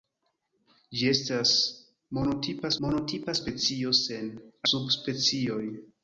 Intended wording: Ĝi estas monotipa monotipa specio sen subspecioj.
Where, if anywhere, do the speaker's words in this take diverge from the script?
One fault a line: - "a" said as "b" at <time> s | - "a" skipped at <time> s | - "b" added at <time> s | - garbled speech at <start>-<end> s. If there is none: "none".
none